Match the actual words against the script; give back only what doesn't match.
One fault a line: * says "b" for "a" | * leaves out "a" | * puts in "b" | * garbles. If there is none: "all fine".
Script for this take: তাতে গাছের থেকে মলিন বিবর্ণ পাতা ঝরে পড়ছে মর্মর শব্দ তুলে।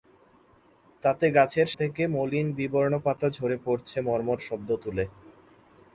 all fine